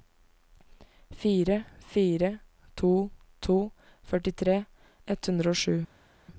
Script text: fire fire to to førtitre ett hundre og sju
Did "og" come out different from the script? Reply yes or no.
no